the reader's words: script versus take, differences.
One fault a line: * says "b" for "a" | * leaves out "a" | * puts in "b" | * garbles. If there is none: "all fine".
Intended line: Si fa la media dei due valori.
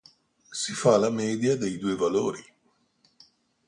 all fine